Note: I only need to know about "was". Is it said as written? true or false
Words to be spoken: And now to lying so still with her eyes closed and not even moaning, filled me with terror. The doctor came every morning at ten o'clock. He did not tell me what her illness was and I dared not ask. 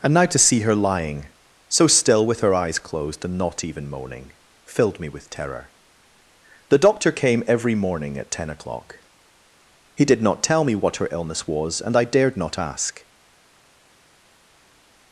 true